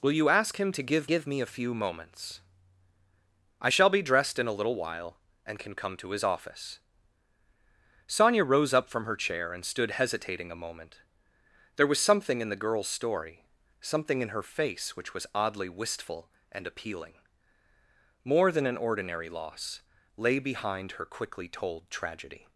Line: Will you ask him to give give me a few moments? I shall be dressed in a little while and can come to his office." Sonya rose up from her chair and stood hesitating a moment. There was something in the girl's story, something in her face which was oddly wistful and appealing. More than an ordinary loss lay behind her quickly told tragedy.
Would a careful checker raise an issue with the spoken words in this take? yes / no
no